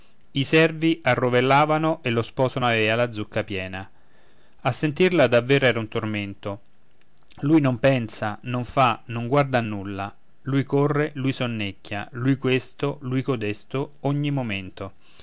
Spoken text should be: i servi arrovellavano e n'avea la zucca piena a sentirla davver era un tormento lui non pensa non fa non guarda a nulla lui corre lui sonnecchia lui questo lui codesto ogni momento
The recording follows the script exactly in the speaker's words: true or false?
false